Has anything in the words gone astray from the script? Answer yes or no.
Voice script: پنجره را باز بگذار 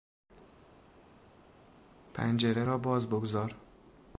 no